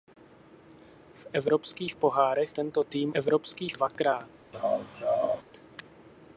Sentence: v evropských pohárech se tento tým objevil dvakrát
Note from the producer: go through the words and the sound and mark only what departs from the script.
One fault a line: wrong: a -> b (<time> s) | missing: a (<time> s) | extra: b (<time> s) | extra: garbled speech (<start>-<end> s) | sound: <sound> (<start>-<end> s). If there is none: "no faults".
missing: se (2.5 s)
wrong: objevil -> evropských (3.1 s)
sound: laugh (4.5-5.4 s)